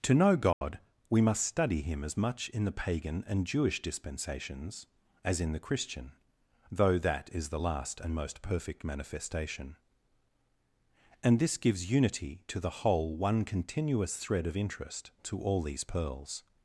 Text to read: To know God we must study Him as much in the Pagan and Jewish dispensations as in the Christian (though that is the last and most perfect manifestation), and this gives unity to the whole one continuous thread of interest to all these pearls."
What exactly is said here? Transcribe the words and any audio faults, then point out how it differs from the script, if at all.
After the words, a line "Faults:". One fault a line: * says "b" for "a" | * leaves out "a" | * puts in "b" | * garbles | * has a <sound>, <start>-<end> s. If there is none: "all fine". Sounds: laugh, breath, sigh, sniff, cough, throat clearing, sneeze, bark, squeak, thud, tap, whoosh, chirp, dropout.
To know God we must study Him as much in the Pagan and Jewish dispensations as in the Christian (though that is the last and most perfect manifestation), and this gives unity to the whole one continuous thread of interest to all these pearls."
Faults:
* has a dropout, 0.5-0.6 s